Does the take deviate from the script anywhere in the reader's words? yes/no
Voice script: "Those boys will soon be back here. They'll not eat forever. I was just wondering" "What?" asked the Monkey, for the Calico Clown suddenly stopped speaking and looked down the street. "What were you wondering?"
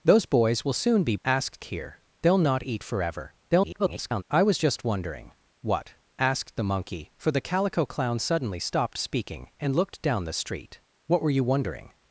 yes